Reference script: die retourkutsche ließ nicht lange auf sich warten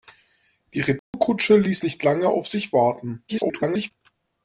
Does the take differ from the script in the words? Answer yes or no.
yes